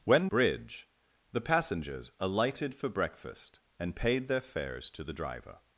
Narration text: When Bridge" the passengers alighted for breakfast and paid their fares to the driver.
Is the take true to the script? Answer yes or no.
yes